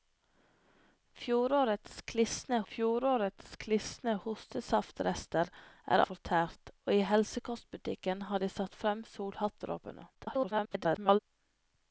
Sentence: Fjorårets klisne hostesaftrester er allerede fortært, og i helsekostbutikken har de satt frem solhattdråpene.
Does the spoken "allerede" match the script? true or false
false